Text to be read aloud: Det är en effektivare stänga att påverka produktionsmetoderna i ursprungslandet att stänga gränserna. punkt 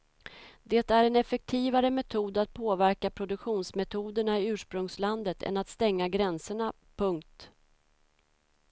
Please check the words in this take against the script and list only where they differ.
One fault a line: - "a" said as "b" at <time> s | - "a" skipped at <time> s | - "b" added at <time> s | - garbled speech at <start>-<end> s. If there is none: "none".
- "stänga" said as "metod" at 1.9 s
- "än" added at 5.4 s